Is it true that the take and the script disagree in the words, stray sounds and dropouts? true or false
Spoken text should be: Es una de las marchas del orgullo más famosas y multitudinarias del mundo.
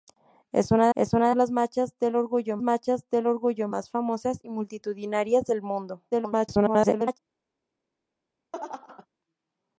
true